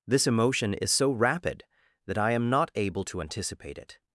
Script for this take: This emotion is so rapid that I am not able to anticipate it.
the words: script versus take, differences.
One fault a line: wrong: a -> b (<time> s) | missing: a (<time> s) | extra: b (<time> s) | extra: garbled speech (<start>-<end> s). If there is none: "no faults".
no faults